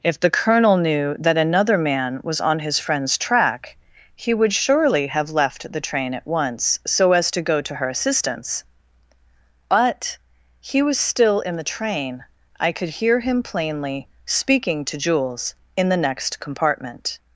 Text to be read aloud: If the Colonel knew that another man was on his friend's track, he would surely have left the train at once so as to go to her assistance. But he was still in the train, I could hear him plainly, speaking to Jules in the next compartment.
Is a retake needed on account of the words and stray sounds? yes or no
no